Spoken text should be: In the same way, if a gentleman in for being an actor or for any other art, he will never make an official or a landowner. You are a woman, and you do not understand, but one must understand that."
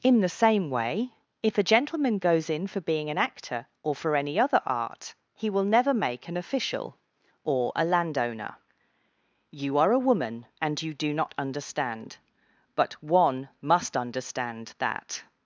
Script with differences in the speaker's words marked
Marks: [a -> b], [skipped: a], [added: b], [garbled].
In the same way, if a gentleman [added: goes] in for being an actor or for any other art, he will never make an official or a landowner. You are a woman, and you do not understand, but one must understand that."